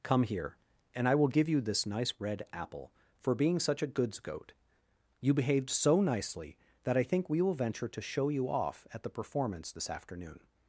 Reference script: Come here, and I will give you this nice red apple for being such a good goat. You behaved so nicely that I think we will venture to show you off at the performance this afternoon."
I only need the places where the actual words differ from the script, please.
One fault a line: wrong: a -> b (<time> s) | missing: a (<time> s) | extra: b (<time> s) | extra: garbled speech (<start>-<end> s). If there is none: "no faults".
wrong: good -> goods (3.9 s)